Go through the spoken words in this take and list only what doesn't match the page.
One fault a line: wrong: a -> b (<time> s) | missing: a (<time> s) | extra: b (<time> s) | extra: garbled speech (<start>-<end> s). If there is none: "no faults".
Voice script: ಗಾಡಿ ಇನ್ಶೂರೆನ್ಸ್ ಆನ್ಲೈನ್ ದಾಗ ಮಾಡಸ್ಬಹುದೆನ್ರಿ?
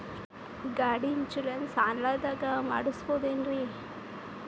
no faults